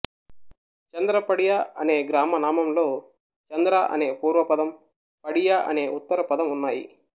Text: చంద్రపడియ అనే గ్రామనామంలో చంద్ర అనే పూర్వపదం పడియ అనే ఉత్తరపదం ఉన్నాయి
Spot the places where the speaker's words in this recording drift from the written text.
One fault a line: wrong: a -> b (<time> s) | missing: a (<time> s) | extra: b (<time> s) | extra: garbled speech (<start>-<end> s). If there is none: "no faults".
no faults